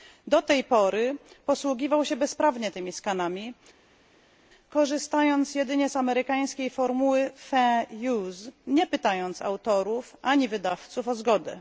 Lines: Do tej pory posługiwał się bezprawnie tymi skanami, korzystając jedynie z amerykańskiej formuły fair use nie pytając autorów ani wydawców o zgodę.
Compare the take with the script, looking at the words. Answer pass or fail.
pass